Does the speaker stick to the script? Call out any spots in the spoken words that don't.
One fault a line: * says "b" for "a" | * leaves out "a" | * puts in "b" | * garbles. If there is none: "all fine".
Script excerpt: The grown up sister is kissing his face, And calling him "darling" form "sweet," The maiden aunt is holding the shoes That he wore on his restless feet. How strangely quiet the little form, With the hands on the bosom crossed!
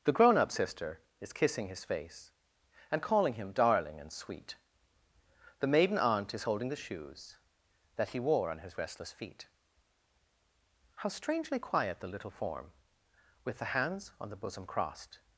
* says "and" for "form"